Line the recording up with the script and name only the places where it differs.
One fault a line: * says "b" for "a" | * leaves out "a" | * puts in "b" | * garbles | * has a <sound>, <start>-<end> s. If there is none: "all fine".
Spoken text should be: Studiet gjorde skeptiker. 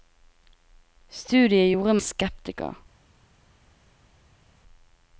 all fine